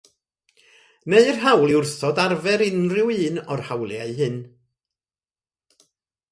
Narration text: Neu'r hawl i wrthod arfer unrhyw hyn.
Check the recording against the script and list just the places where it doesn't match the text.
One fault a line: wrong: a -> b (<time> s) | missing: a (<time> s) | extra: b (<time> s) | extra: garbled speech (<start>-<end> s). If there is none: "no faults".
extra: un o'r hawliau (3.3 s)